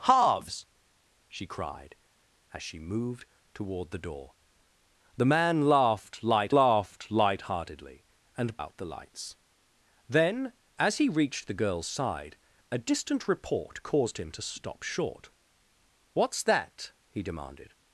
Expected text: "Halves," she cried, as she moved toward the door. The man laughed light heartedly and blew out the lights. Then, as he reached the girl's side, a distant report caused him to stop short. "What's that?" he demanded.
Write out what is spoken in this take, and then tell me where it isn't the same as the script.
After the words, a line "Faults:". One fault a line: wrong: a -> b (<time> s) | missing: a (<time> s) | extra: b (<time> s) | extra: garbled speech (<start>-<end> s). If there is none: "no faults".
"Halves," she cried, as she moved toward the door. The man laughed light laughed light heartedly and out the lights. Then, as he reached the girl's side, a distant report caused him to stop short. "What's that?" he demanded.
Faults:
extra: laughed light (6.5 s)
missing: blew (8.6 s)